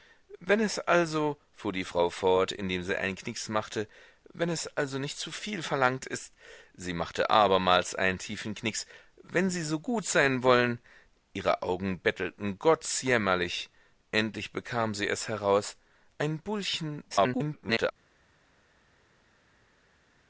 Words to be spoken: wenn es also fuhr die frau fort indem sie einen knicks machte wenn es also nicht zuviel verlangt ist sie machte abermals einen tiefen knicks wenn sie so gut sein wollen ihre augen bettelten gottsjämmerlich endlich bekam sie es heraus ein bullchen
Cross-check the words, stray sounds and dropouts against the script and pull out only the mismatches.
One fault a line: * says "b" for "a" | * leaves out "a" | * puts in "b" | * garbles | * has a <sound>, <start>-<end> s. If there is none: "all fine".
* garbles